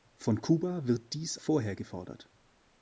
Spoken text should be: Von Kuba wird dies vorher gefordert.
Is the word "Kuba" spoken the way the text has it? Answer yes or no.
yes